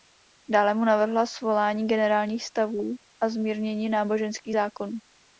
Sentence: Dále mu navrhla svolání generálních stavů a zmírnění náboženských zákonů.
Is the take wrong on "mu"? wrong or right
right